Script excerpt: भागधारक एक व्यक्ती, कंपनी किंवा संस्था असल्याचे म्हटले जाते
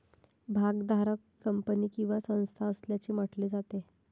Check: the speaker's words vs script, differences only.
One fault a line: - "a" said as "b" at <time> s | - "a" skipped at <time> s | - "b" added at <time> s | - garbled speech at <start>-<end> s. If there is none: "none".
- "एक व्यक्ती" skipped at 1.4 s